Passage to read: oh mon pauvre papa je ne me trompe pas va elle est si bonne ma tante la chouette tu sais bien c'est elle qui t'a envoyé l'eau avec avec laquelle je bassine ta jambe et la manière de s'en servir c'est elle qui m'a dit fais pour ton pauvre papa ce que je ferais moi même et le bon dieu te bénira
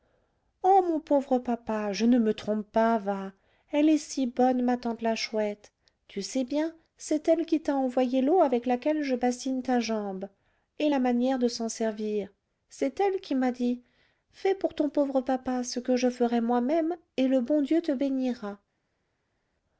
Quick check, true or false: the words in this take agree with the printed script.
false